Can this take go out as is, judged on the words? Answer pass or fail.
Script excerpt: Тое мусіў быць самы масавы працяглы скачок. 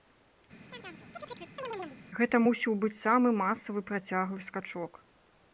fail